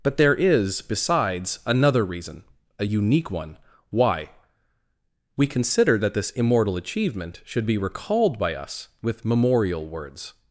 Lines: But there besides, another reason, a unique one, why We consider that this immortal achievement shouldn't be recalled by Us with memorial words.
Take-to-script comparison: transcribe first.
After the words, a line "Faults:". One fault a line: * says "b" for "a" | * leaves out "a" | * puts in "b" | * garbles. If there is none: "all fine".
But there is, besides, another reason, a unique one, why We consider that this immortal achievement should be recalled by Us with memorial words.
Faults:
* puts in "is"
* says "should" for "shouldn't"